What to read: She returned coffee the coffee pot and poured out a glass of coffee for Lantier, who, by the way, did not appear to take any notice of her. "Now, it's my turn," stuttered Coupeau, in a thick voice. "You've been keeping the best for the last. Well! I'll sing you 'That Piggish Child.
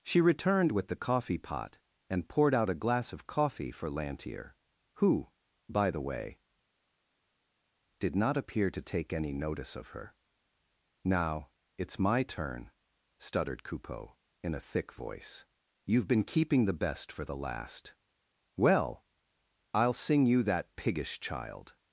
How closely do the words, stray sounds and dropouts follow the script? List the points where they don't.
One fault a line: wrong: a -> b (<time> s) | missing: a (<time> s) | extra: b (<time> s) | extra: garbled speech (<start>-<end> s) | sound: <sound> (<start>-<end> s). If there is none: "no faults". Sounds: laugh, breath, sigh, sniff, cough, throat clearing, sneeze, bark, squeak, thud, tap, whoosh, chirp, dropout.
wrong: coffee -> with (0.7 s)